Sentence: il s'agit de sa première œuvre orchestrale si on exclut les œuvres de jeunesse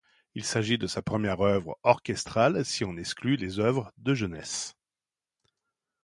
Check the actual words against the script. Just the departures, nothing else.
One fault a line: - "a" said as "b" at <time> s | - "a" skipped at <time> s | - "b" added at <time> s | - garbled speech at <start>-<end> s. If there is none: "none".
none